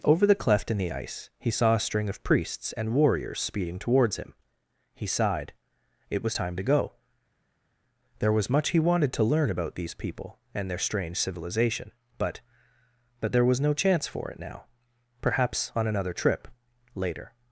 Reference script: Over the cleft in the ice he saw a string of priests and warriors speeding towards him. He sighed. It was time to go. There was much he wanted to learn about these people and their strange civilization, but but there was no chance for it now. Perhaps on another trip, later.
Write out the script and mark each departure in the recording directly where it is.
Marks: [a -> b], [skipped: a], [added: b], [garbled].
Over the cleft in the ice he saw a string of priests and warriors speeding towards him. He sighed. It was time to go. There was much he wanted to learn about these people and their strange civilization, but but there was no chance for it now. Perhaps on another trip, later.